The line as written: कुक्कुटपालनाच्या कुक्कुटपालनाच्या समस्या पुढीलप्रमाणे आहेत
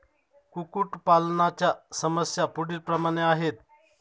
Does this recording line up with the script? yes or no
no